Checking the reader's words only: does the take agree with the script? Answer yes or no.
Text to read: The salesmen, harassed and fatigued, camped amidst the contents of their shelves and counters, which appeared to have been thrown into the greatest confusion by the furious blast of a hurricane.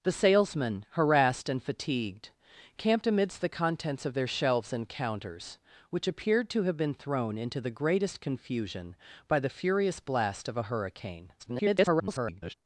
no